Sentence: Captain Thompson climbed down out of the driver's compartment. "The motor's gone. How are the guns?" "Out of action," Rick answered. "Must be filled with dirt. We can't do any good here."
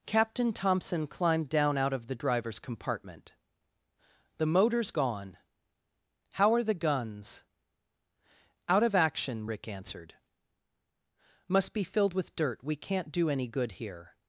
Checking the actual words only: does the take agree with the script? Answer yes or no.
yes